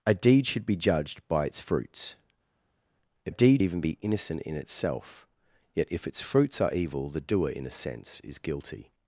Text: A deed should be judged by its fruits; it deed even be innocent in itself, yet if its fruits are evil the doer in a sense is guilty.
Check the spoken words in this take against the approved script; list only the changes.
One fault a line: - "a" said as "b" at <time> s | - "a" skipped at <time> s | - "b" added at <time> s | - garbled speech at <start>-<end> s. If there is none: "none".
none